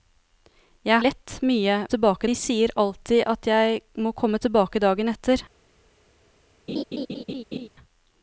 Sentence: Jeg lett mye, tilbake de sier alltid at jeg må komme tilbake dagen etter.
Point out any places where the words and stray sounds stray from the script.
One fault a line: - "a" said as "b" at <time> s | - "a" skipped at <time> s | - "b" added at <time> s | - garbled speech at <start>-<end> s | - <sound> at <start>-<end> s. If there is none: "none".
- laugh at 6.7-7.7 s